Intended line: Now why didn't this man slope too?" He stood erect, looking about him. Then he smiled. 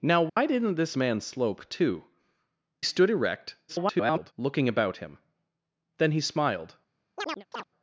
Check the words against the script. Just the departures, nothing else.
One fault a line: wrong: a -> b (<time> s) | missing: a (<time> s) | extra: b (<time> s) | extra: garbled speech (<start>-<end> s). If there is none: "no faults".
missing: He (2.0 s)
extra: garbled speech (3.7-4.3 s)